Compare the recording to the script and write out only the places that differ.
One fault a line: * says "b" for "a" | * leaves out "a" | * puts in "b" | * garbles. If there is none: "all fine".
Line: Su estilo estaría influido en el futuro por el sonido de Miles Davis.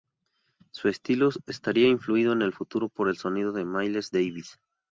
all fine